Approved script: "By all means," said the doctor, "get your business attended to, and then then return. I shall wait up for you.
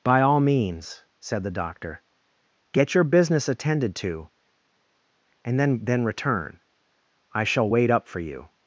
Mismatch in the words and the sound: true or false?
false